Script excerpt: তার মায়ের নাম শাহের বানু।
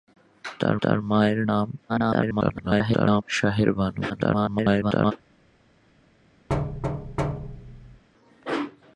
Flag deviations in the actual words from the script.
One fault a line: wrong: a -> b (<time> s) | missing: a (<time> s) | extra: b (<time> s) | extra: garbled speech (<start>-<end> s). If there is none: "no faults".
extra: তার (0.8 s)
extra: garbled speech (1.9-3.2 s)
extra: garbled speech (4.1-5.1 s)